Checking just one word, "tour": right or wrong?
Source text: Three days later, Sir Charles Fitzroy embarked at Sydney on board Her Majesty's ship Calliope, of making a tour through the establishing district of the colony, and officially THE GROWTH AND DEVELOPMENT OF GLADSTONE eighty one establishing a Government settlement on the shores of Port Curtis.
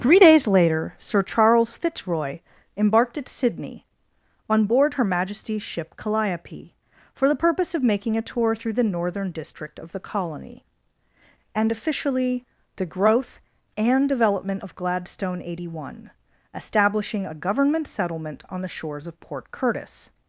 right